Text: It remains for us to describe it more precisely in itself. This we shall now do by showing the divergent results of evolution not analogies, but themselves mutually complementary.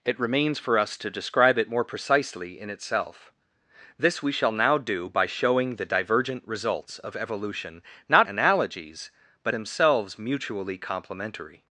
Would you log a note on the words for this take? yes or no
no